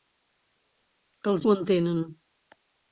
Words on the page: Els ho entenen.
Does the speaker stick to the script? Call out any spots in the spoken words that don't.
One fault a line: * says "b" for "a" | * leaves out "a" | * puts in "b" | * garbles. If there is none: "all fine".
all fine